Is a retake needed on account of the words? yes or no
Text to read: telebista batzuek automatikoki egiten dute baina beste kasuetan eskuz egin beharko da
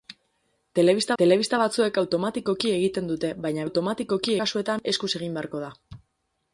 yes